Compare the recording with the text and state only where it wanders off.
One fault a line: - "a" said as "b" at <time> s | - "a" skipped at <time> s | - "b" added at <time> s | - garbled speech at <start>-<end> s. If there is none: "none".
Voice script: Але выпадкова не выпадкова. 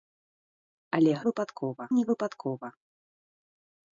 none